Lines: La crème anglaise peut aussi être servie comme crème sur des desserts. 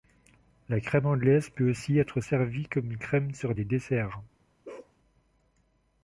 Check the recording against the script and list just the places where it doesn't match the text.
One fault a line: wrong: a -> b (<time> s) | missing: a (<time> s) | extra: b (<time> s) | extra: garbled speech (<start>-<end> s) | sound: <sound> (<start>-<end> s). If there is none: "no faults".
sound: bark (4.6-5.0 s)